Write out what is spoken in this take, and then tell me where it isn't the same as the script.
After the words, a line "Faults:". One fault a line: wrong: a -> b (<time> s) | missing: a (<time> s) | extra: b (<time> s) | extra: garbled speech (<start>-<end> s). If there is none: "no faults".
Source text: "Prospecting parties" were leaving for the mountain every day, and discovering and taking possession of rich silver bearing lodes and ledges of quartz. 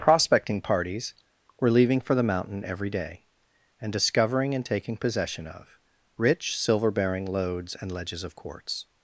"Prospecting parties" were leaving for the mountain every day, and discovering and taking possession of rich silver bearing lodes and ledges of quartz.
Faults:
no faults